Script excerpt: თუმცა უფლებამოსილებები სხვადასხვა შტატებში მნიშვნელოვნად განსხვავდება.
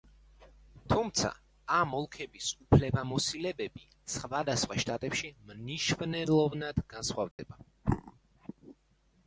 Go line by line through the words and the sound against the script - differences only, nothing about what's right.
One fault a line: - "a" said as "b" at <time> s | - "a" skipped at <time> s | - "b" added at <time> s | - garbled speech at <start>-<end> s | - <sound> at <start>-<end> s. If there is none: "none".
- "ამ ოლქების" added at 1.8 s
- dropout at 7.3-7.4 s